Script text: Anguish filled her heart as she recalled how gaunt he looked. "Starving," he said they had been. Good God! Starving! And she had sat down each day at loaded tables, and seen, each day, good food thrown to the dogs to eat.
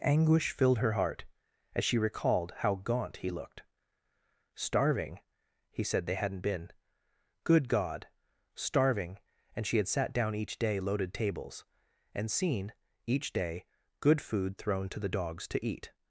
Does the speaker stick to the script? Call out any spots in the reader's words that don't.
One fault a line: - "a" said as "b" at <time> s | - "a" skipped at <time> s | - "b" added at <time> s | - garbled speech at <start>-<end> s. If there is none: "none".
- "had" said as "hadn't" at 6.2 s
- "at" skipped at 10.8 s